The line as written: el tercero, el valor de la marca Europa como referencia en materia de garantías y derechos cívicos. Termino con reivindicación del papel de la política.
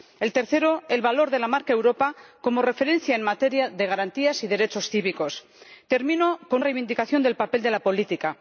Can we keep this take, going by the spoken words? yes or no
yes